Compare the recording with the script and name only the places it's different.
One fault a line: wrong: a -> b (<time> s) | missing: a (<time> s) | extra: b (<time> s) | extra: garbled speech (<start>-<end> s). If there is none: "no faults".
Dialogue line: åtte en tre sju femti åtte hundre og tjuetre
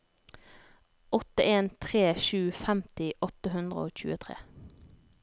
no faults